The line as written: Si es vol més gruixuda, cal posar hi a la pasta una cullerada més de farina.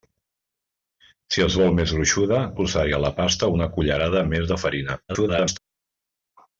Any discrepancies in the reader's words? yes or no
yes